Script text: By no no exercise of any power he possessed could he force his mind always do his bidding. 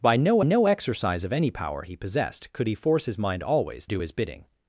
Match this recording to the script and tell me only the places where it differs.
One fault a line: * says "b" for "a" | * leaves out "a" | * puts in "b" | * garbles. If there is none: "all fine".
all fine